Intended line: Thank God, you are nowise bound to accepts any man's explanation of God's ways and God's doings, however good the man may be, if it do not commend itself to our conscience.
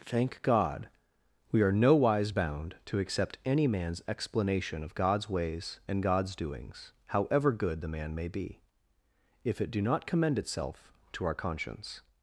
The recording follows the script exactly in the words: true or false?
false